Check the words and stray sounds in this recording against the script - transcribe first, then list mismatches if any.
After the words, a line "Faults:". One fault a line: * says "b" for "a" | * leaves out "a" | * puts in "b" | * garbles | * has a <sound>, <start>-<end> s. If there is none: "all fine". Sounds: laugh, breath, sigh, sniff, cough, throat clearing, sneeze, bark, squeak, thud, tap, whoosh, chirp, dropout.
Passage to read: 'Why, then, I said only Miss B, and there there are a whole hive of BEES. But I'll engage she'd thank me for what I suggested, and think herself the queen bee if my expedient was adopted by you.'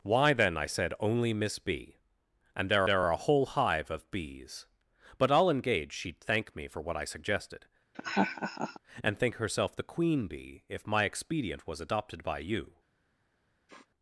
'Why, then, I said only Miss B, and there there are a whole hive of BEES. But I'll engage she'd thank me for what I suggested, and think herself the queen bee if my expedient was adopted by you.'
Faults:
* has a laugh, 7.9-8.8 s
* has a sniff, 13.7-13.9 s